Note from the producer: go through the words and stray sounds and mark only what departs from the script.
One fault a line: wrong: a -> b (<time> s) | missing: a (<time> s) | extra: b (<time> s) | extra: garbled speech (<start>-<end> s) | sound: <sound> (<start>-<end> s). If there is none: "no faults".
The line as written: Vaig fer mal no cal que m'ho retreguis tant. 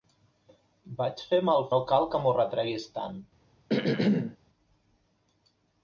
sound: throat clearing (3.7-4.4 s)